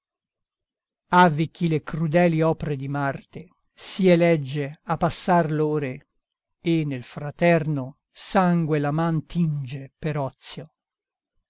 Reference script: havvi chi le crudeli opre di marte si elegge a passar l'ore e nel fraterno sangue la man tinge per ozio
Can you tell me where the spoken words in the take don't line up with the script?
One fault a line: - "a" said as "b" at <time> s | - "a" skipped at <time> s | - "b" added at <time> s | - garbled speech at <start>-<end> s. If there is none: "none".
none